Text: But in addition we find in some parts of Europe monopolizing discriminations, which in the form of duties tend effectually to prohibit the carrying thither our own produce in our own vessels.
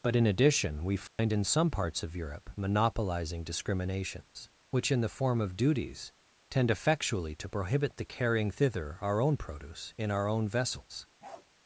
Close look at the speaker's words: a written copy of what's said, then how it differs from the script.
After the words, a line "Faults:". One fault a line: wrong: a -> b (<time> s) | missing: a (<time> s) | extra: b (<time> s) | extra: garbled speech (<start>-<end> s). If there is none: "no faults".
But in addition we find in some parts of Europe monopolizing discriminations, which in the form of duties tend effectually to prohibit the carrying thither our own produce in our own vessels.
Faults:
no faults